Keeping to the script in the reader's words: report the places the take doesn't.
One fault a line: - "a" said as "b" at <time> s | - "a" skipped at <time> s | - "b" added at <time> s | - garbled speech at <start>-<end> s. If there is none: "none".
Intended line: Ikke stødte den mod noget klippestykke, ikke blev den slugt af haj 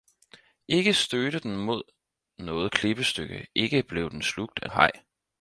none